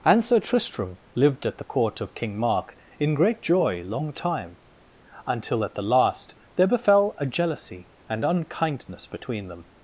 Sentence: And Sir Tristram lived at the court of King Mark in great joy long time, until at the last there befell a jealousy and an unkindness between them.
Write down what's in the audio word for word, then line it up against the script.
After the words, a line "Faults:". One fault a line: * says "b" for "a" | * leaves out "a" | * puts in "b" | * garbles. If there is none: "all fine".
And Sir Tristram lived at the court of King Mark in great joy long time, until at the last there befell a jealousy and unkindness between them.
Faults:
* leaves out "an"